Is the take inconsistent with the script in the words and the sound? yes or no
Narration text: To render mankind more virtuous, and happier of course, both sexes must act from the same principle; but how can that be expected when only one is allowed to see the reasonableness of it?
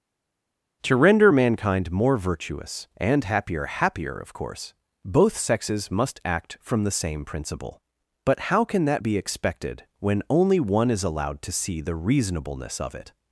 yes